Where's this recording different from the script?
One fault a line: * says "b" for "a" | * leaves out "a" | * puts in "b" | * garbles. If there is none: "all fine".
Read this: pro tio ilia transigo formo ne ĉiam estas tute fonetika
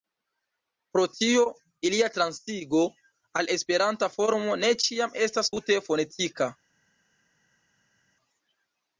* puts in "al esperanta"